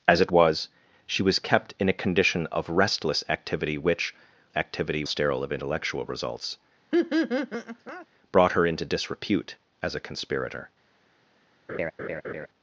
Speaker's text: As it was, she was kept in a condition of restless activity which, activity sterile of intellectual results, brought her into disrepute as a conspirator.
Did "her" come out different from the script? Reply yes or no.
no